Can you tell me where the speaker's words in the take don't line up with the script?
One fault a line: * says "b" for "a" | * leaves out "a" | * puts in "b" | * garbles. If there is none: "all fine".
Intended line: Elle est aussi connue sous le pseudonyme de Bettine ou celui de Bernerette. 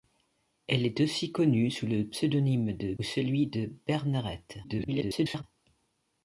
* leaves out "Bettine"
* garbles